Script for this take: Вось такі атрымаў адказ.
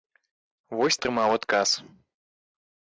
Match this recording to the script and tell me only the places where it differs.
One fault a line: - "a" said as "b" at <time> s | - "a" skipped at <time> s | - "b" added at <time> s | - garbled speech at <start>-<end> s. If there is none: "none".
- "такі" skipped at 1.0 s